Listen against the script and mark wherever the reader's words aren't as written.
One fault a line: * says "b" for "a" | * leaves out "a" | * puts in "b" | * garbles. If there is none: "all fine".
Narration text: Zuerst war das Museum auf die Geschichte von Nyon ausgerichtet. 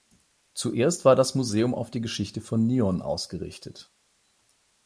all fine